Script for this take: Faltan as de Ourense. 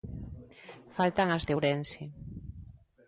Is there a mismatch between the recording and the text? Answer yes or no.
no